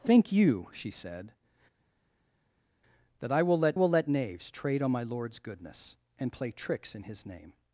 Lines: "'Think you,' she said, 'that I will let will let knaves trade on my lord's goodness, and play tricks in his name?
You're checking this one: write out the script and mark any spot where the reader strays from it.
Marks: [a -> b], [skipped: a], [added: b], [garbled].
"'Think you,' she said, 'that I will let will let knaves trade on my lord's goodness, and play tricks in his name?